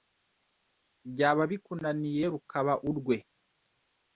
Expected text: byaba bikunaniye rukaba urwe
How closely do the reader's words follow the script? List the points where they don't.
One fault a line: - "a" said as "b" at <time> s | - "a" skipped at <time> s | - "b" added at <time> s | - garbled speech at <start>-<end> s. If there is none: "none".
none